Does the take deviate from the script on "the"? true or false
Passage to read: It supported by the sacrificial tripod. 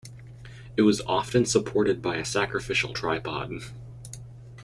true